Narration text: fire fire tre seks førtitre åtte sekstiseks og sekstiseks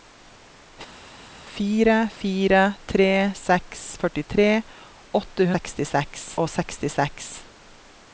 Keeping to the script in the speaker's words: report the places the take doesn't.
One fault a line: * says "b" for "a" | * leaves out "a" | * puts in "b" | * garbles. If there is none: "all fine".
all fine